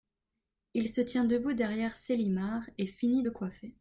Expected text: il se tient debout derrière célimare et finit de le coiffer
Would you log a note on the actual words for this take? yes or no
yes